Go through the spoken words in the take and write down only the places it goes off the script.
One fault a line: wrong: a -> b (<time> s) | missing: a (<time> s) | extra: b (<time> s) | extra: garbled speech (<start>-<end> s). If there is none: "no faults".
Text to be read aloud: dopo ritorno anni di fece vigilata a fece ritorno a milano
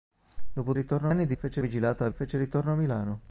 no faults